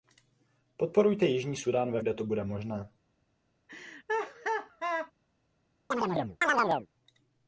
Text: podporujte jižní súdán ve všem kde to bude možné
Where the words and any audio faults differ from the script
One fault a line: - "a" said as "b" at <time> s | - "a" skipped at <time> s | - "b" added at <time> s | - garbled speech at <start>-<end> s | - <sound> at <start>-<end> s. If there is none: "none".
- "všem" skipped at 2.0 s
- laugh at 3.7-5.1 s
- chirp at 5.9-6.9 s